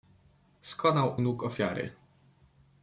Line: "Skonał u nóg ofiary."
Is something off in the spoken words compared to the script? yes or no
no